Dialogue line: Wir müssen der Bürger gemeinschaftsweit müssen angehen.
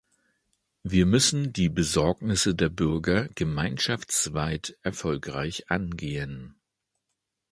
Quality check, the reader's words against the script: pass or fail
fail